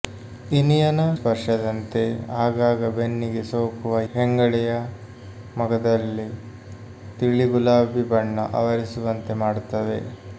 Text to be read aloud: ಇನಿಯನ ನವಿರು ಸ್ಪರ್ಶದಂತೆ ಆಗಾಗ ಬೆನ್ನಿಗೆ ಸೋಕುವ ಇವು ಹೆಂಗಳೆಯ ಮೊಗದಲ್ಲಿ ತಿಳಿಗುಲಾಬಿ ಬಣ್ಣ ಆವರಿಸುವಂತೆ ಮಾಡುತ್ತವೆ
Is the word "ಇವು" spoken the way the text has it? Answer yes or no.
no